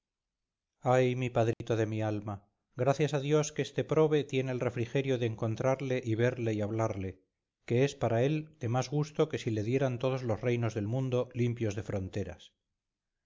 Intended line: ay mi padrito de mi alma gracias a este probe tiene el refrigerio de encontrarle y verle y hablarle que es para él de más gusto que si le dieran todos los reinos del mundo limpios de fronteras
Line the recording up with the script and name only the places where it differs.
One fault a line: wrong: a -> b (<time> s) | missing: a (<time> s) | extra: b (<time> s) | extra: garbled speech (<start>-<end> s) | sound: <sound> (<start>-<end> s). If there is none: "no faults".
sound: dropout (1.5-1.6 s)
extra: dios que (3.2 s)